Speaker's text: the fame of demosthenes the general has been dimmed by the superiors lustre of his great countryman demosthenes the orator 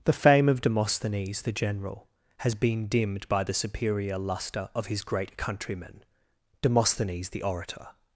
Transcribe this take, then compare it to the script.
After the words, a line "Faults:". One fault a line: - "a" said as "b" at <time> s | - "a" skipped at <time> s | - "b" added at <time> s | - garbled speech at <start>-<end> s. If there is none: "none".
the fame of demosthenes the general has been dimmed by the superior lustre of his great countryman demosthenes the orator
Faults:
- "superiors" said as "superior" at 3.5 s